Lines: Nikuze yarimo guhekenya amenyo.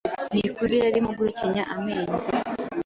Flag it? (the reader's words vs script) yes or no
no